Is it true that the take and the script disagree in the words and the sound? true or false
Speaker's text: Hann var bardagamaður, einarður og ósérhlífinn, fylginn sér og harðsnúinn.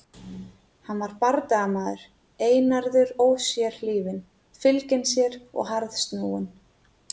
true